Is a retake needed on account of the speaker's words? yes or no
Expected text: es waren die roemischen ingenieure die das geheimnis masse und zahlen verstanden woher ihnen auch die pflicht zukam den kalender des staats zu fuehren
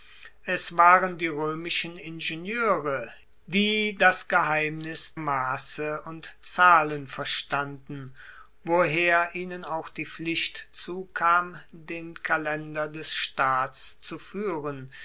no